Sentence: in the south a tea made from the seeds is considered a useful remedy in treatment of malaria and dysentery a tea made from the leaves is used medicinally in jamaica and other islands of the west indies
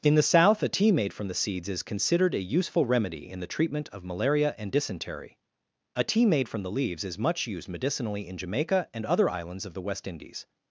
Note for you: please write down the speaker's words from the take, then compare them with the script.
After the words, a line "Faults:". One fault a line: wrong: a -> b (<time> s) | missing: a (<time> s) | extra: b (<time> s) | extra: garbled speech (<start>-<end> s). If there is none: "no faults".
in the south a tea made from the seeds is considered a useful remedy in the treatment of malaria and dysentery a tea made from the leaves is much used medicinally in jamaica and other islands of the west indies
Faults:
extra: the (3.4 s)
extra: much (7.2 s)